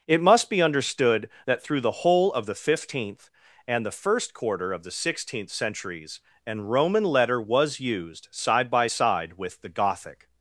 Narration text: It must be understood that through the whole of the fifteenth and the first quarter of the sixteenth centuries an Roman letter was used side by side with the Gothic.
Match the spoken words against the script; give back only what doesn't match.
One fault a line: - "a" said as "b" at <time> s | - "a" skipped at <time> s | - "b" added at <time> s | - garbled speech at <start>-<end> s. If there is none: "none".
none